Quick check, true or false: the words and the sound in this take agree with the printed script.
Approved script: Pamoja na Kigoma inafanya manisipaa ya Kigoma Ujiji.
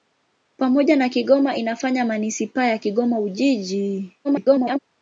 false